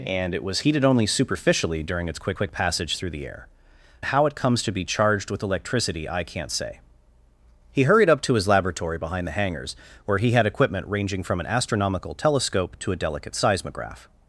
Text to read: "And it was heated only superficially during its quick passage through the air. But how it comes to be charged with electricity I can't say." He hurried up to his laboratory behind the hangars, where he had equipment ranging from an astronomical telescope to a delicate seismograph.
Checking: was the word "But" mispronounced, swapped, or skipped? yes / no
yes